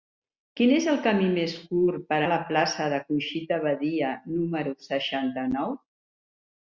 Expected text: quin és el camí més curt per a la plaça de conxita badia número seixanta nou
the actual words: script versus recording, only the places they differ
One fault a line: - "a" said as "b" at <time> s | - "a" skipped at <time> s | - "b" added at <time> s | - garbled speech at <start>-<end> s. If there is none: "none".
none